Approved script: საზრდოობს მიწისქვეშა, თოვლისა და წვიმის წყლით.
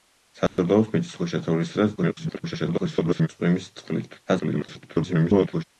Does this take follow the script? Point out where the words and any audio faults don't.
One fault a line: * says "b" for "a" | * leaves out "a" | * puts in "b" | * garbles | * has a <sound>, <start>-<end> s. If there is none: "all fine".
* has a dropout, 0.5-0.6 s
* garbles
* garbles